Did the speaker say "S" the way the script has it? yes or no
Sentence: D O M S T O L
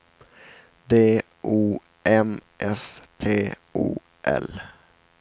yes